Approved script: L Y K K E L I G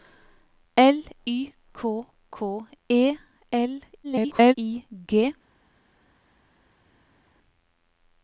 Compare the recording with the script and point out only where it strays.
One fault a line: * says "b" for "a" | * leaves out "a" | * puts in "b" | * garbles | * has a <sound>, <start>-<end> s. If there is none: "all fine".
* garbles